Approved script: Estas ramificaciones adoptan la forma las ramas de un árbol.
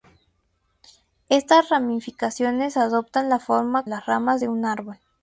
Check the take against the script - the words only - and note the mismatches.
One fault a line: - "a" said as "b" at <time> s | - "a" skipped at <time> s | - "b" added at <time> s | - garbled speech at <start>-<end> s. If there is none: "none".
none